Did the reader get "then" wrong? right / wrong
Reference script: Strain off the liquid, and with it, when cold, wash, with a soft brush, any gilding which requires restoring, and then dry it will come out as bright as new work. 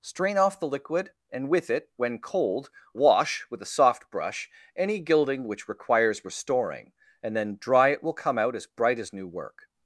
right